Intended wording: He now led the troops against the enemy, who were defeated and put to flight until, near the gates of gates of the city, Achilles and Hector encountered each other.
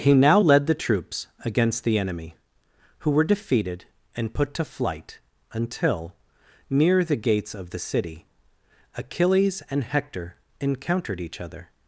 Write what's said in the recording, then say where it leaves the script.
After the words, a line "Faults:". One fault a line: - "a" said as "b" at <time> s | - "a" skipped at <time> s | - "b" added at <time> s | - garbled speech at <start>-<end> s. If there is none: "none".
He now led the troops against the enemy, who were defeated and put to flight until, near the gates of the city, Achilles and Hector encountered each other.
Faults:
- "gates of" skipped at 7.7 s